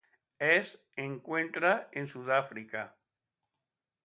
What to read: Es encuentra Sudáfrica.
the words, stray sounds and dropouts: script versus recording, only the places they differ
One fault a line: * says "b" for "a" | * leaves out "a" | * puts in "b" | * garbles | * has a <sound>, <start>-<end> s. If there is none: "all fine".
* puts in "en"